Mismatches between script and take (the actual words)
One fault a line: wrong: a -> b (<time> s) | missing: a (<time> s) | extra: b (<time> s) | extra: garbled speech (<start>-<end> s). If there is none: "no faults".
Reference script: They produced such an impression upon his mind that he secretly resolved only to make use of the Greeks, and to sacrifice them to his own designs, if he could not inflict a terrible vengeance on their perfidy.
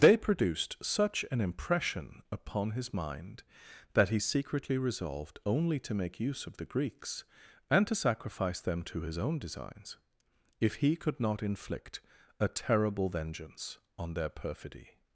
no faults